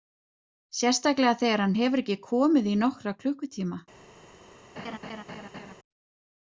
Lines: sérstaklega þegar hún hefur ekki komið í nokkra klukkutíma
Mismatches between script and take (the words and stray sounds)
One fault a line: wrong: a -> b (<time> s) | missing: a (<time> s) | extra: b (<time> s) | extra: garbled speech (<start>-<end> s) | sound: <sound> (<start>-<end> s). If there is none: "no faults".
wrong: hún -> hann (1.6 s)
sound: laugh (4.8-5.7 s)